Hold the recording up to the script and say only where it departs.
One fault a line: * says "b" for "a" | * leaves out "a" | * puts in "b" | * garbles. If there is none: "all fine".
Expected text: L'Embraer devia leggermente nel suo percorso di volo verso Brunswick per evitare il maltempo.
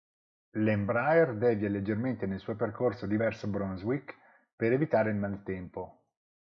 * leaves out "volo"